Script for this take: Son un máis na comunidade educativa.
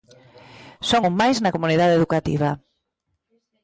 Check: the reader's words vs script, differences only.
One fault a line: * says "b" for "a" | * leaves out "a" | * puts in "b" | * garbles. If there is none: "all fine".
all fine